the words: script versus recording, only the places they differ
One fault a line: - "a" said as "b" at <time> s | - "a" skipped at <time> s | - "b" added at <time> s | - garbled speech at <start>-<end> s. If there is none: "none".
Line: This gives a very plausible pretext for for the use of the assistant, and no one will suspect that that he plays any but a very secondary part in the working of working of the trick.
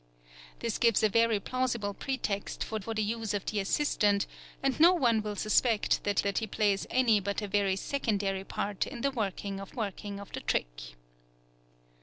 none